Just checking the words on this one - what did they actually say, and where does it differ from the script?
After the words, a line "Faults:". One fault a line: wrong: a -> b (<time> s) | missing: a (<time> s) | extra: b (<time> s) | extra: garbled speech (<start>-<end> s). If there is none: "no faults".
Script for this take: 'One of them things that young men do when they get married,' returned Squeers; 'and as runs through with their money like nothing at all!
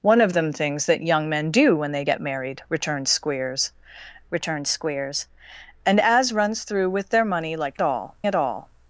'One of them things that young men do when they get married,' returned Squeers returned Squeers; 'and as runs through with their money like all at all!
Faults:
extra: returned Squeers (4.3 s)
wrong: nothing -> all (7.8 s)